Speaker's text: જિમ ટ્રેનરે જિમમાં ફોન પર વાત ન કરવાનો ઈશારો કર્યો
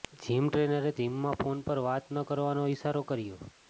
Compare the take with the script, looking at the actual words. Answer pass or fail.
pass